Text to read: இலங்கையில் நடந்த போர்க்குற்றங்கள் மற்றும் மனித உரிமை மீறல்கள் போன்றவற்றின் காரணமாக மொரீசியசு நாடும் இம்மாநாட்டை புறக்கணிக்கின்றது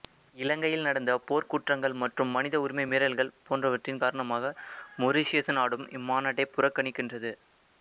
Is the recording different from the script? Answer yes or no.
no